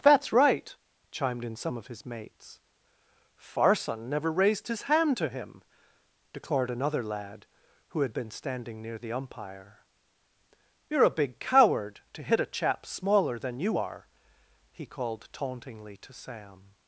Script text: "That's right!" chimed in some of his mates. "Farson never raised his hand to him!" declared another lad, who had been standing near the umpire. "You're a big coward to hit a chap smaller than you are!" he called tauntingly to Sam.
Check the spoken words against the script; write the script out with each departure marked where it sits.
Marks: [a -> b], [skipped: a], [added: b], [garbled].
"That's right!" chimed in some of his mates. "Farson never raised his hand to him!" declared another lad, who had been standing near the umpire. "You're a big coward to hit a chap smaller than you are!" he called tauntingly to Sam.